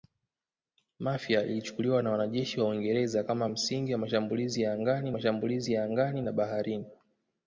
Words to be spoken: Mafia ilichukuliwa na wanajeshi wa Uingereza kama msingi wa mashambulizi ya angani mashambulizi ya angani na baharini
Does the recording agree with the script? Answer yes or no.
yes